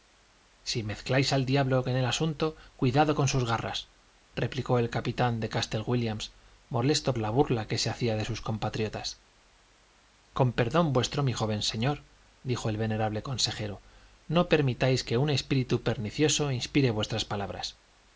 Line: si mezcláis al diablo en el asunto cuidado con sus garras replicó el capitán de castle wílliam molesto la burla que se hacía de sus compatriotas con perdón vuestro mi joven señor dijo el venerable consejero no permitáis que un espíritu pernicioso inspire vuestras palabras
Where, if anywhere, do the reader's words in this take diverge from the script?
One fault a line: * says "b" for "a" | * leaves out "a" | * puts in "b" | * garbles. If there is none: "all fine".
all fine